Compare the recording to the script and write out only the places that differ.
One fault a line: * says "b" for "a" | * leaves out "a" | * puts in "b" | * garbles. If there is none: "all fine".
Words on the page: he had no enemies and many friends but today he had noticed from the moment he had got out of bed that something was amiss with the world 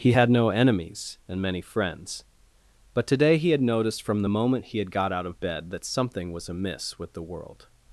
all fine